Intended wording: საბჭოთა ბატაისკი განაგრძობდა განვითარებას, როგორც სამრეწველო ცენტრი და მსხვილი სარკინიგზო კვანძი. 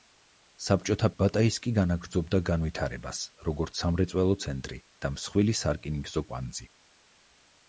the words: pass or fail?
pass